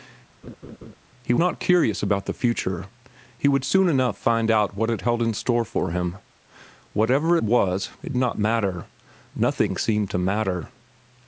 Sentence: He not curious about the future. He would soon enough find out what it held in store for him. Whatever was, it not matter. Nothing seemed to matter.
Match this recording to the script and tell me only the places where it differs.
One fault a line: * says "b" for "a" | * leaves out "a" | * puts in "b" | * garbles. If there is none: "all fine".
all fine